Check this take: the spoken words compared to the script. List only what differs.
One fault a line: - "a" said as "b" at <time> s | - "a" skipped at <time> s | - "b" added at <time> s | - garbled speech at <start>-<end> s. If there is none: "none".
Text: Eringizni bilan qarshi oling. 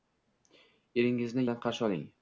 none